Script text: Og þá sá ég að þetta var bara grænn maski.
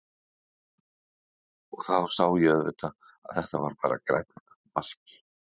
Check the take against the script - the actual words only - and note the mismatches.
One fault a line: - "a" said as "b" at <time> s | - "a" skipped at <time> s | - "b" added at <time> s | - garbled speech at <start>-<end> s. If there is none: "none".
- "auðvitað" added at 2.5 s